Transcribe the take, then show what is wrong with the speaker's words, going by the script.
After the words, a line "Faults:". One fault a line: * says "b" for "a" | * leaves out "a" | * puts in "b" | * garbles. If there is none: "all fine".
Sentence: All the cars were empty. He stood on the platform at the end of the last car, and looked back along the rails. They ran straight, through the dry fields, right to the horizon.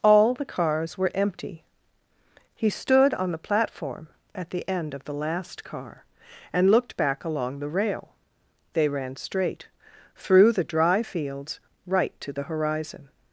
All the cars were empty. He stood on the platform at the end of the last car, and looked back along the rail. They ran straight, through the dry fields, right to the horizon.
Faults:
* says "rail" for "rails"